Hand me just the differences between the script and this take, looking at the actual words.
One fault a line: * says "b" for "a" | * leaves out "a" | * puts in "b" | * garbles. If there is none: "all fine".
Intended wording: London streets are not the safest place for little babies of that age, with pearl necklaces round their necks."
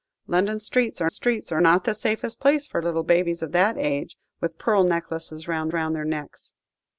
* puts in "streets are"
* puts in "round"